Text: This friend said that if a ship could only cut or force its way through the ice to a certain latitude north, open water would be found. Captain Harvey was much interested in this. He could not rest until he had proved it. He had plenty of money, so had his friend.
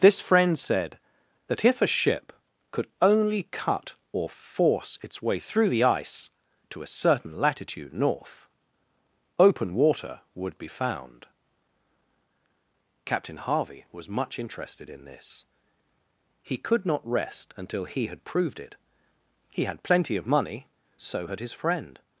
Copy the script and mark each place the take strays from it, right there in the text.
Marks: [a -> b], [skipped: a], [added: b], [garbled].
This friend said that if a ship could only cut or force its way through the ice to a certain latitude north, open water would be found. Captain Harvey was much interested in this. He could not rest until he had proved it. He had plenty of money, so had his friend.